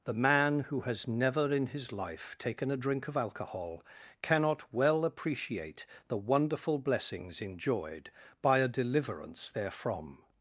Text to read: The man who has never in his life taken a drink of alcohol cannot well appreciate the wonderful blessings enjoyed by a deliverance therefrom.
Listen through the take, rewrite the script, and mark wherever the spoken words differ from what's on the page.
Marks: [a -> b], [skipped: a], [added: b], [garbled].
The man who has never in his life taken a drink of alcohol cannot well appreciate the wonderful blessings enjoyed by a deliverance therefrom.